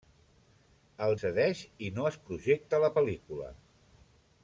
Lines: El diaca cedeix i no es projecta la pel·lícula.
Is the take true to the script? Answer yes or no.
no